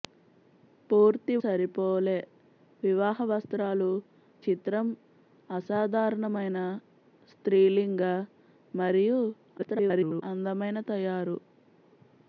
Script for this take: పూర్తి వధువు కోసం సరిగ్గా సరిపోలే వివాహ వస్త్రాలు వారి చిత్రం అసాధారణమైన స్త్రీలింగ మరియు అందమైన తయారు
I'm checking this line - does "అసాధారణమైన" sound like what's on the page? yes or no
yes